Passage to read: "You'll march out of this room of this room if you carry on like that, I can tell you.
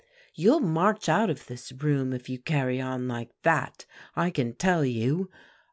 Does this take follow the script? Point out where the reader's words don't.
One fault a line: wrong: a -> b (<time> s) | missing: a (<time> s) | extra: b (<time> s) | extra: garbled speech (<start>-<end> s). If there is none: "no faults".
missing: of this room (2.1 s)